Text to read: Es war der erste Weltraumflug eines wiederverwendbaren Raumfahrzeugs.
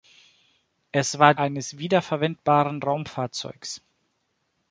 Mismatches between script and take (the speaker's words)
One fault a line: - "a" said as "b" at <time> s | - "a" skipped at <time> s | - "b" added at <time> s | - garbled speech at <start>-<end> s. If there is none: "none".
- "der erste Weltraumflug" skipped at 1.4 s